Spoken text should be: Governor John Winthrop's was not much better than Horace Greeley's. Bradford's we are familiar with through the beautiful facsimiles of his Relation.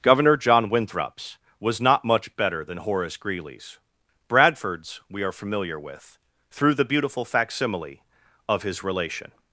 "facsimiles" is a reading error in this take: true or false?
true